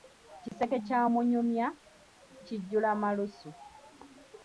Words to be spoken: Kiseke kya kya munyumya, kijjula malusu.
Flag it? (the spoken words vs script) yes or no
yes